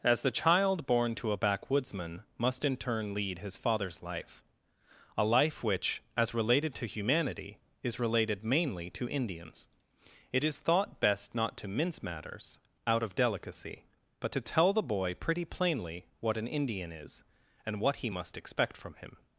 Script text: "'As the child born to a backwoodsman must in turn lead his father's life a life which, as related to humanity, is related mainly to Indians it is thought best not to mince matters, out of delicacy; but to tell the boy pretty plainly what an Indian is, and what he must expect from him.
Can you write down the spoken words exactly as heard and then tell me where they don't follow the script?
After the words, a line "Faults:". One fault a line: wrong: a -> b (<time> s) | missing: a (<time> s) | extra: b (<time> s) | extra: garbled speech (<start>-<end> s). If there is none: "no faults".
"'As the child born to a backwoodsman must in turn lead his father's life a life which, as related to humanity, is related mainly to Indians it is thought best not to mince matters, out of delicacy; but to tell the boy pretty plainly what an Indian is, and what he must expect from him.
Faults:
no faults